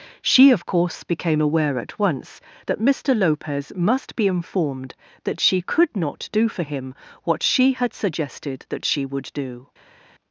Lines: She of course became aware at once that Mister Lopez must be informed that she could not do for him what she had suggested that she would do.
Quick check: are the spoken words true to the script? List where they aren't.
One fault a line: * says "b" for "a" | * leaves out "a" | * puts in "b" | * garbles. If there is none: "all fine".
all fine